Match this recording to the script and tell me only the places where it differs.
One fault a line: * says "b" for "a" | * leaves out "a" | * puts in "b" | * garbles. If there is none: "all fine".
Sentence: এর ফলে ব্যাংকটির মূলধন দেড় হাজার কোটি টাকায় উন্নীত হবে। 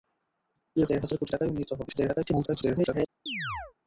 * leaves out "ফলে ব্যাংকটির মূলধন"
* garbles